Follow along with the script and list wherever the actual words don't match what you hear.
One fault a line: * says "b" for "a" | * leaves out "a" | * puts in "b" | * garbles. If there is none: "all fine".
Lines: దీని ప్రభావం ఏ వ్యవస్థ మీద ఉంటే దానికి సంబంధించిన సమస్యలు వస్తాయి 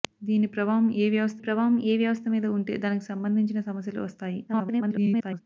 * puts in "ప్రభావం ఏ వ్యవస్థ"
* garbles